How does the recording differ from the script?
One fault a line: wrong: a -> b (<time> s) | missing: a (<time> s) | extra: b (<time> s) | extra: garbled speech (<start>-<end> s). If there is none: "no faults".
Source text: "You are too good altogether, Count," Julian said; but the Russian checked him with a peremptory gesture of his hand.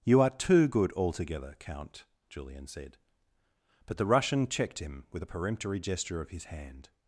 no faults